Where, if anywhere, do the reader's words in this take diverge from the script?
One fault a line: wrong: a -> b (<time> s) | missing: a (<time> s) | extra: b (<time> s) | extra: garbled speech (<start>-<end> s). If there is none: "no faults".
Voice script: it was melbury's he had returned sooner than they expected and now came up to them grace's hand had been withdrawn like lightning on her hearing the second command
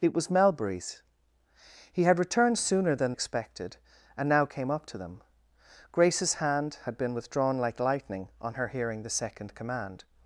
missing: they (3.1 s)